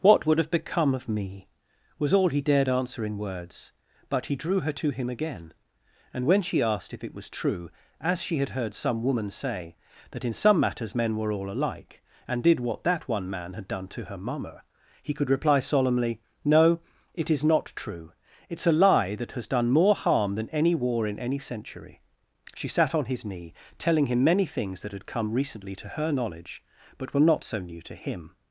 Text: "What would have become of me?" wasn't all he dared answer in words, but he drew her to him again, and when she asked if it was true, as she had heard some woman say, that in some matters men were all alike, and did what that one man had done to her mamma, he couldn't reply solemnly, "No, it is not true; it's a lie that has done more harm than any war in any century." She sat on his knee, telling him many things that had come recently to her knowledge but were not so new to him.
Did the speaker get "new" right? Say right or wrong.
right